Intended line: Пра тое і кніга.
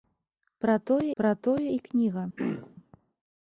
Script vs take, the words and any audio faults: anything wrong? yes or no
yes